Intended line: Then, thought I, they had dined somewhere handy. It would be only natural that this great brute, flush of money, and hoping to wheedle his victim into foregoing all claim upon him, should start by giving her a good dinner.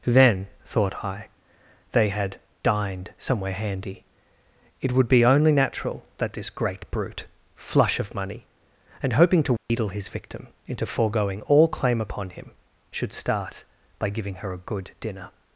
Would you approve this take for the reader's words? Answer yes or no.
yes